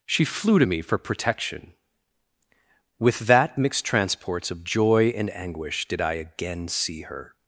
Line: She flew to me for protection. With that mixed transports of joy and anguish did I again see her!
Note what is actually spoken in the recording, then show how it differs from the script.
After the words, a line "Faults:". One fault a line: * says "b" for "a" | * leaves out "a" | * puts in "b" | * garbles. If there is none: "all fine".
She flew to me for protection. With that mixed transports of joy and anguish did I again see her!
Faults:
all fine